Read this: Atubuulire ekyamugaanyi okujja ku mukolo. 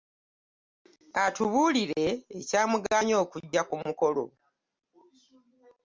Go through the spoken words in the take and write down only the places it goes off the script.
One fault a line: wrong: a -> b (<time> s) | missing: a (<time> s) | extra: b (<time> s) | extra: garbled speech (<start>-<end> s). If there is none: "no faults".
no faults